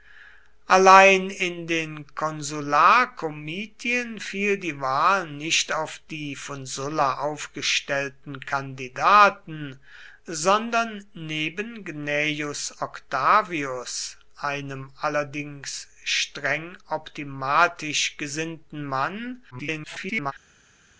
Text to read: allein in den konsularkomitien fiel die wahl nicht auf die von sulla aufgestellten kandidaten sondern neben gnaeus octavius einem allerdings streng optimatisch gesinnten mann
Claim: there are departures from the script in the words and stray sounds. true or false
true